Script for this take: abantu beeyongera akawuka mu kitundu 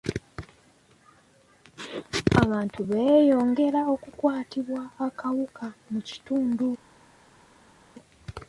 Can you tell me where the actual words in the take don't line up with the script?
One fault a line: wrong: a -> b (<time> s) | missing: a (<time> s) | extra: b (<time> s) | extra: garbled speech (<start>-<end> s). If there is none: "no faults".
extra: okukwatibwa (3.9 s)